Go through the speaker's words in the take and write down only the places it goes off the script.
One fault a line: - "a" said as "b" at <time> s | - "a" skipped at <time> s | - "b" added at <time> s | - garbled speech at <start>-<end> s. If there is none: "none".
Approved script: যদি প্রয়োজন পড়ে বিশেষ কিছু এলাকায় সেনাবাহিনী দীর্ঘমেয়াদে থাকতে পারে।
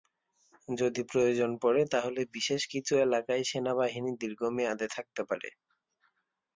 - "তাহলে" added at 1.9 s